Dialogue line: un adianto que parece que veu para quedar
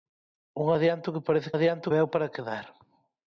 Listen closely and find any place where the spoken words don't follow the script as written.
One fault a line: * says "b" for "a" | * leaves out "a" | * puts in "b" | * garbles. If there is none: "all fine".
* says "adianto" for "que"